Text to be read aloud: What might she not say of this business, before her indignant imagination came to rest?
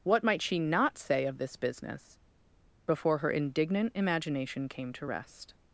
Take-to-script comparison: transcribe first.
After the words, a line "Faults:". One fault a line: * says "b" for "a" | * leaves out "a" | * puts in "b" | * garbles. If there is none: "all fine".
What might she not say of this business, before her indignant imagination came to rest?
Faults:
all fine